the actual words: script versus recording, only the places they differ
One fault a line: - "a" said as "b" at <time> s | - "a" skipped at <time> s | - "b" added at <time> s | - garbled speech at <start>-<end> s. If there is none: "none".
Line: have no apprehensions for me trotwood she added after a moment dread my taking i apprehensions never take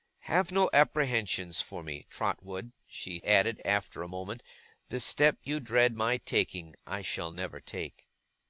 - "the step you" added at 4.9 s
- "apprehensions" said as "shall" at 7.0 s